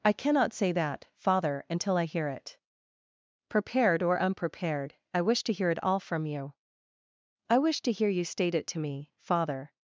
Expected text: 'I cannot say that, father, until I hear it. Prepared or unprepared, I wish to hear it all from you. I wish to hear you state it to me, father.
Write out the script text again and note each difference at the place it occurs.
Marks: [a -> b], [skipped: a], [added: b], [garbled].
'I cannot say that, father, until I hear it. Prepared or unprepared, I wish to hear it all from you. I wish to hear you state it to me, father.